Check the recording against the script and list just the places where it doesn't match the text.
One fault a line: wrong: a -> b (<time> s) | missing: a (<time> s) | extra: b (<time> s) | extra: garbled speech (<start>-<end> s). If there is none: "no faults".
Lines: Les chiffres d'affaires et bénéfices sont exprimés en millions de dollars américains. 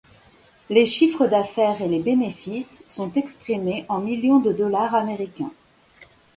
extra: les (1.9 s)